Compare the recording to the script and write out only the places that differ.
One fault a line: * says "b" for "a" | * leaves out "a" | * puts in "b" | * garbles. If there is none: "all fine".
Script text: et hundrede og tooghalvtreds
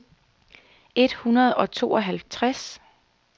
all fine